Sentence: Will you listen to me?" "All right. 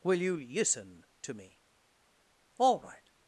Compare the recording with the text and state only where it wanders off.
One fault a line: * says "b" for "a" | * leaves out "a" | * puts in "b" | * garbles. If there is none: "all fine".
all fine